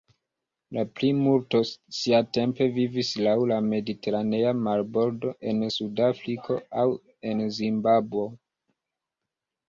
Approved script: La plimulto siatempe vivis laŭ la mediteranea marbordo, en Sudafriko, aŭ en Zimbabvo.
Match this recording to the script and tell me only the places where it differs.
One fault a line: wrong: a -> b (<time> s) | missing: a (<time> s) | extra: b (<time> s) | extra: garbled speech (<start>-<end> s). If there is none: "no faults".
no faults